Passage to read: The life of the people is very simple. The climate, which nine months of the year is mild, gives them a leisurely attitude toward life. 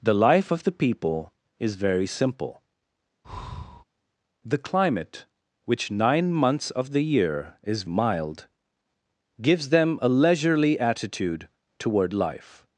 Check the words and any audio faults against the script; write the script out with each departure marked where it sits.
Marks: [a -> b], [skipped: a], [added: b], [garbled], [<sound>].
The life of the people is very simple. [breath] The climate, which nine months of the year is mild, gives them a leisurely attitude toward life.